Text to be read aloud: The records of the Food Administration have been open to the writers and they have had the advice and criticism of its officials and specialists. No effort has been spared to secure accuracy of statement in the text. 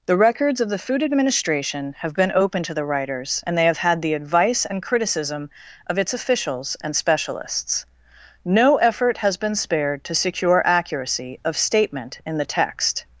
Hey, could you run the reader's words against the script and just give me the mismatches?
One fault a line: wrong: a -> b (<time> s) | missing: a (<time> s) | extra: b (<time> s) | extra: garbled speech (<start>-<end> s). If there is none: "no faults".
no faults